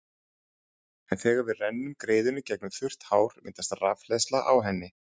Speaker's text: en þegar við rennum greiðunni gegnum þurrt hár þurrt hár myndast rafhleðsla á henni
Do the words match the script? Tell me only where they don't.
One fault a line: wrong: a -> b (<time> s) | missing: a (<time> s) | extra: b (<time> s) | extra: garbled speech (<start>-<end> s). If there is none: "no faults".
missing: þurrt hár (3.4 s)